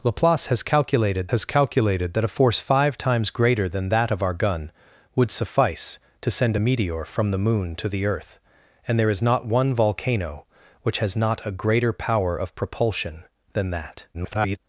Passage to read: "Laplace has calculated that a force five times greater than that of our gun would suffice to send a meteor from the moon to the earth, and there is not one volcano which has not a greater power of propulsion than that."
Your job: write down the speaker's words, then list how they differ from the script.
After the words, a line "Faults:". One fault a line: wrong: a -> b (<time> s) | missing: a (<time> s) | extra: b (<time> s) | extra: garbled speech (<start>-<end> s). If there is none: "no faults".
"Laplace has calculated has calculated that a force five times greater than that of our gun would suffice to send a meteor from the moon to the earth, and there is not one volcano which has not a greater power of propulsion than that." [garbled]
Faults:
extra: has calculated (1.3 s)
extra: garbled speech (14.1-14.6 s)